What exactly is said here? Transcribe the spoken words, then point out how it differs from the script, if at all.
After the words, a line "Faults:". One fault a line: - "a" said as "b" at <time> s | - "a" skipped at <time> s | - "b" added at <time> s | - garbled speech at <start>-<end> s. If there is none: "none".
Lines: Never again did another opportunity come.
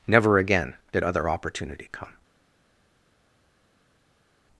Never again did other opportunity come.
Faults:
- "another" said as "other" at 1.0 s